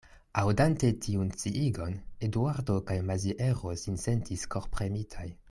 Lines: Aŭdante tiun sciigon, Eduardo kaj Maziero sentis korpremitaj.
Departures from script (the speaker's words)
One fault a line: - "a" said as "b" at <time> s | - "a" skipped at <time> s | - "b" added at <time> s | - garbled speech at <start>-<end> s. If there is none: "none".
- "sin" added at 3.8 s